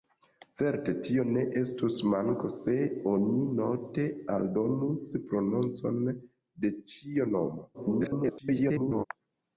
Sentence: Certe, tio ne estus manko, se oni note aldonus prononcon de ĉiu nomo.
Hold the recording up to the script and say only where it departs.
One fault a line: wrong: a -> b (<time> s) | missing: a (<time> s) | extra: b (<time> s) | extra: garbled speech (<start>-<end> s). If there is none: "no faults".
extra: garbled speech (7.7-9.0 s)